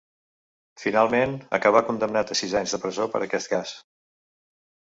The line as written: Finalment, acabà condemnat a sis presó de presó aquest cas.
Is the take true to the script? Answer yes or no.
no